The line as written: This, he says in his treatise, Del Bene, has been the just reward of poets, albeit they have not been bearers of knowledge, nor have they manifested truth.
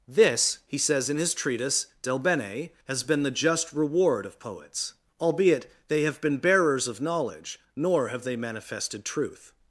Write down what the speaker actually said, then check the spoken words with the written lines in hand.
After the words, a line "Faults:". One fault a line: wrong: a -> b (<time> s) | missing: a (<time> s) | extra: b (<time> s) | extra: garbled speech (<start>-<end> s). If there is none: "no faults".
This, he says in his treatise, Del Bene, has been the just reward of poets, albeit they have been bearers of knowledge, nor have they manifested truth.
Faults:
missing: not (6.2 s)